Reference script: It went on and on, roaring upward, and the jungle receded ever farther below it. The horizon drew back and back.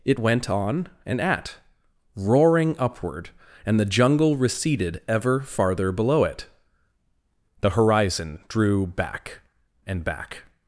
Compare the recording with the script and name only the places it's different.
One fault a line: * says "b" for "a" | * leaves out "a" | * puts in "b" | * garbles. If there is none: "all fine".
* says "at" for "on"